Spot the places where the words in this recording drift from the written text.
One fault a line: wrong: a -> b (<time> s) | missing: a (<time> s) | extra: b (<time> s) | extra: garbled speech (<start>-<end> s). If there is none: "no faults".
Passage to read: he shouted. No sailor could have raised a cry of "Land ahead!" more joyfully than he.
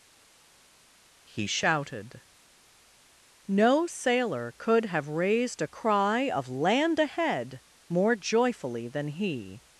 no faults